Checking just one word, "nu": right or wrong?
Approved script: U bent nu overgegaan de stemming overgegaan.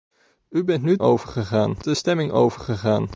right